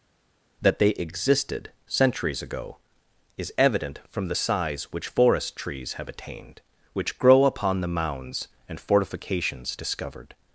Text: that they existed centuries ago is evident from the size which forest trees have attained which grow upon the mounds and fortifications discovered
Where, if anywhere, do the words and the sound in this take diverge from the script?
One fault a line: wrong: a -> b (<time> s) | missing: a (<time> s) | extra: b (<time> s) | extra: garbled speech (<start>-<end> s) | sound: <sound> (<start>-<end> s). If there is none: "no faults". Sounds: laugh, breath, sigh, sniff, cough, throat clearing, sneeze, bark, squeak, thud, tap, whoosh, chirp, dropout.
no faults